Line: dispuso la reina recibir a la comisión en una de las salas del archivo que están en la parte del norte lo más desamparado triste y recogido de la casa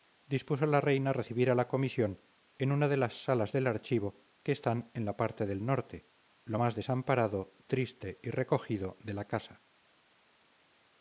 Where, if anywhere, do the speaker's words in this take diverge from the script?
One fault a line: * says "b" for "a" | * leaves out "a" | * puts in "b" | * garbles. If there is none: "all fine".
all fine